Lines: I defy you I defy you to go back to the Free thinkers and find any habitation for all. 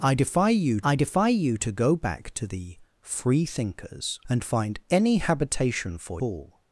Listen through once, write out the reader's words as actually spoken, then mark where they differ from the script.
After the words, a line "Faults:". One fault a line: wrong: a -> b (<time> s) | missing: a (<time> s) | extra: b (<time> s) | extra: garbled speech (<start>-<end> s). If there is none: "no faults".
I defy you I defy you to go back to the Free thinkers and find any habitation for all.
Faults:
no faults